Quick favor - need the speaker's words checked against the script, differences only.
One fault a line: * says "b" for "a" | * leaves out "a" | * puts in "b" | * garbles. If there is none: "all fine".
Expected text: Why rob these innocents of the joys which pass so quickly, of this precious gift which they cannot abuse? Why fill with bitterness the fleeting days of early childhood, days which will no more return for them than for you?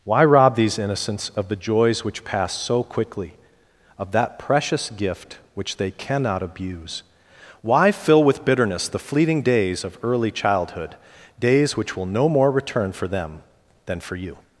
* says "that" for "this"